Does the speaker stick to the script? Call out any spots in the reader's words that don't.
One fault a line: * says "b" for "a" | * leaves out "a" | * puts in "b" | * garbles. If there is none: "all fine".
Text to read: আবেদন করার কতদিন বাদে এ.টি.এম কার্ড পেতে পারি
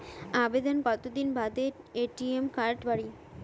* leaves out "করার"
* leaves out "পেতে"